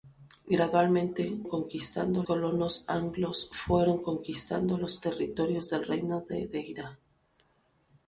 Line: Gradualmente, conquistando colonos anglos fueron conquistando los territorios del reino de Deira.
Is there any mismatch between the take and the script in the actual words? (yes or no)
no